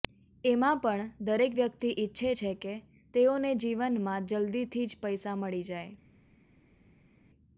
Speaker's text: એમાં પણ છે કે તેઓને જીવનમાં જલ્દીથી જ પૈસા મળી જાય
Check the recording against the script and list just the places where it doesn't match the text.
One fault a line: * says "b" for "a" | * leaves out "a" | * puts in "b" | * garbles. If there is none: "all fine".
* puts in "દરેક વ્યક્તિ ઈચ્છે"